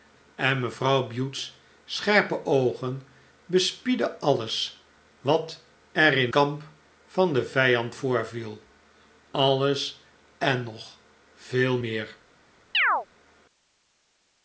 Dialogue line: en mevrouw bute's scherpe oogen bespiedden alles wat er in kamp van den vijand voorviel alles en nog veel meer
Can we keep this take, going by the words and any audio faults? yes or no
no